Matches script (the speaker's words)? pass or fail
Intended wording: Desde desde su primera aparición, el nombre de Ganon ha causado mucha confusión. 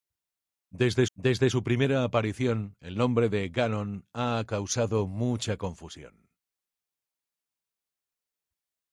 pass